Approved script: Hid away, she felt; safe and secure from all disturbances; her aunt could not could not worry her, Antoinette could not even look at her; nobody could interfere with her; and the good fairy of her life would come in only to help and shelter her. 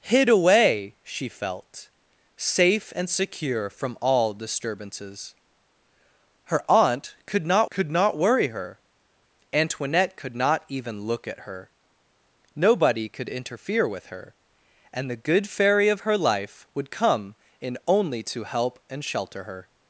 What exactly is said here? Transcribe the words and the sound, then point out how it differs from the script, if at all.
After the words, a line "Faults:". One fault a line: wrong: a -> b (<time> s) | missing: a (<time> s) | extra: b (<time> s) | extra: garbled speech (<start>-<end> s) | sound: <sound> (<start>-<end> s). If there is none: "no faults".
Hid away, she felt; safe and secure from all disturbances; her aunt could not could not worry her, Antoinette could not even look at her; nobody could interfere with her; and the good fairy of her life would come in only to help and shelter her.
Faults:
no faults